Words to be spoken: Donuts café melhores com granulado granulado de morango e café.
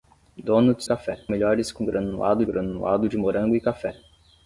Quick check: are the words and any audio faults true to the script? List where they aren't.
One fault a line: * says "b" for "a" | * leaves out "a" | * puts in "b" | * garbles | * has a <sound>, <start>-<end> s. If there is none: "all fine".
all fine